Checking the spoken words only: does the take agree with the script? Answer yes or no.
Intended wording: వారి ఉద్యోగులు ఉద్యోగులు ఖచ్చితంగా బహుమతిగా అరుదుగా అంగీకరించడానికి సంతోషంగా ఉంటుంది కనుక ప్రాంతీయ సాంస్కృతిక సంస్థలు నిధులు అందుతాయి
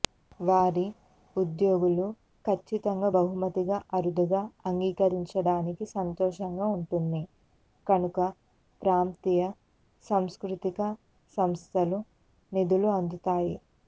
no